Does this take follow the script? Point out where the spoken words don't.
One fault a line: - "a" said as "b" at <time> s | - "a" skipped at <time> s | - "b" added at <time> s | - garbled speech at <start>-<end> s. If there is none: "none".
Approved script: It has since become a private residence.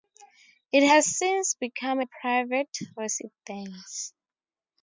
none